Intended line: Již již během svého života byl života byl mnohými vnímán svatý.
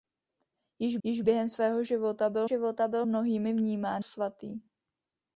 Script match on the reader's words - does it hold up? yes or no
yes